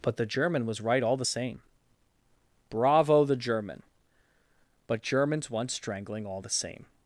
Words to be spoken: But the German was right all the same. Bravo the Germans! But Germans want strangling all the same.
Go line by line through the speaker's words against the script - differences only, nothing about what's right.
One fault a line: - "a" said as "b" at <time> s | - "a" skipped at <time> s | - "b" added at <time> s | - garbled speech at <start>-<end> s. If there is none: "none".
- "Germans" said as "German" at 3.4 s